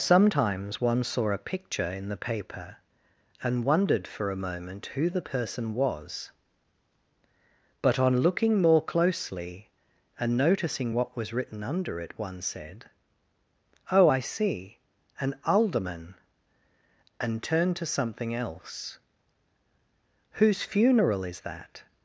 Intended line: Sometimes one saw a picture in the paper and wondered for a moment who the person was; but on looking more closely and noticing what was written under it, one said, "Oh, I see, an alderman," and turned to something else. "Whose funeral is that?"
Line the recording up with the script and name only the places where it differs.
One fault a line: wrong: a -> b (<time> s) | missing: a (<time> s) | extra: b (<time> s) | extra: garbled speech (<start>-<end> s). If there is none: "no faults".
no faults